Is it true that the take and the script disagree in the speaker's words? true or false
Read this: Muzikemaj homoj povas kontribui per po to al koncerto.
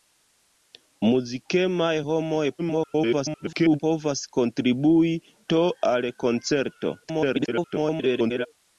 true